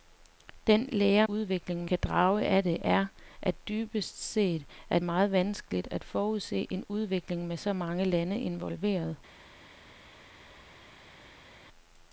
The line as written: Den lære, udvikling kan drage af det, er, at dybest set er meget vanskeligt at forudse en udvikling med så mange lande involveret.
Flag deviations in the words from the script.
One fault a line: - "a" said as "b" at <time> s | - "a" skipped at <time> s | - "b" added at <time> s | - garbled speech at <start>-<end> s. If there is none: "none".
none